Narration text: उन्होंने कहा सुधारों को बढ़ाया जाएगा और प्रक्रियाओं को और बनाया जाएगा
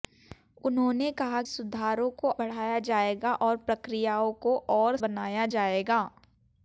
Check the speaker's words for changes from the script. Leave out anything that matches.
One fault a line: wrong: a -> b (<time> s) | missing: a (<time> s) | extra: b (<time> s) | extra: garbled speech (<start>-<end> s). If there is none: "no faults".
no faults